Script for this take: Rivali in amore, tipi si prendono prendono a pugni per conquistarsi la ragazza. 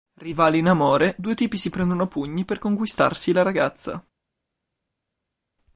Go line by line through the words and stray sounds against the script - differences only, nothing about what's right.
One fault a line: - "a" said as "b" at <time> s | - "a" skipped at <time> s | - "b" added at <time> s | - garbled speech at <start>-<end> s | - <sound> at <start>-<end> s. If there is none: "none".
- "due" added at 1.2 s
- "prendono" skipped at 2.0 s